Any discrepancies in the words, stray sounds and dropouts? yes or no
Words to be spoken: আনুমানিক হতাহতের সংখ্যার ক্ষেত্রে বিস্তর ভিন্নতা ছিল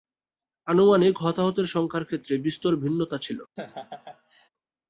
yes